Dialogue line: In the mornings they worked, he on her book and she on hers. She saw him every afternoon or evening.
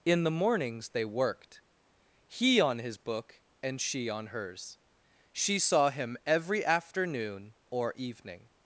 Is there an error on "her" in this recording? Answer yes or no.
yes